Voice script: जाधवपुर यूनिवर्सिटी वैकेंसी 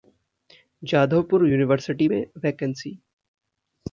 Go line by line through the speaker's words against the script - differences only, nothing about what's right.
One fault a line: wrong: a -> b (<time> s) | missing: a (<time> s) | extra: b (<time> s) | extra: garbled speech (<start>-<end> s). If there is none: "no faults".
extra: में (2.0 s)